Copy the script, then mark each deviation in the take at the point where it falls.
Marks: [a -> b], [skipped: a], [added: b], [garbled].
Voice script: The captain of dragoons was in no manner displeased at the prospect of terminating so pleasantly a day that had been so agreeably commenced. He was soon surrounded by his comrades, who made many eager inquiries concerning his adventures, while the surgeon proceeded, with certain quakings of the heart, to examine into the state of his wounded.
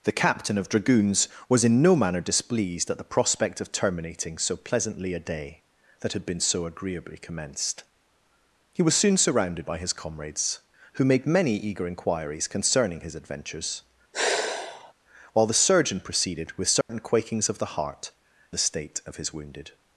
The captain of dragoons was in no manner displeased at the prospect of terminating so pleasantly a day that had been so agreeably commenced. He was soon surrounded by his comrades, who made many eager inquiries concerning his adventures, while the surgeon proceeded, with certain quakings of the heart, [skipped: to examine into] the state of his wounded.